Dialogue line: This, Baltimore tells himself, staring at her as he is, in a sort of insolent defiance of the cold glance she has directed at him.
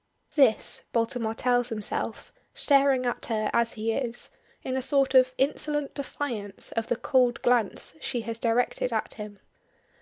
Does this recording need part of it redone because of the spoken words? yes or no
no